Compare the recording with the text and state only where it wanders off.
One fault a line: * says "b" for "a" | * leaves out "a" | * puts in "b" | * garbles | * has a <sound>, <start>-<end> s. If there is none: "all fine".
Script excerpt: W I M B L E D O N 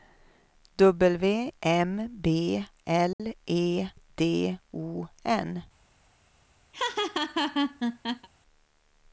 * leaves out "I"
* has a dropout, 3.1-3.2 s
* has a laugh, 6.7-8.3 s